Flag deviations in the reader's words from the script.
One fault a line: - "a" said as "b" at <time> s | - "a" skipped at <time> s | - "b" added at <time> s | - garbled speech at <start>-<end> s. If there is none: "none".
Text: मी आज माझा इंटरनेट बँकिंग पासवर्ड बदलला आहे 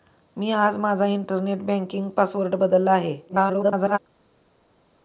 - garbled speech at 3.3-4.0 s